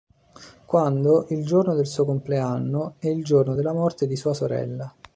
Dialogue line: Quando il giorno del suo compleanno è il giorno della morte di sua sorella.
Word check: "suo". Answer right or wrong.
right